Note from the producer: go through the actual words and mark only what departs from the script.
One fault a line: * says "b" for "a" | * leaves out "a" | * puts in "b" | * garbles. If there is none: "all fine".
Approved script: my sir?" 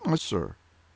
all fine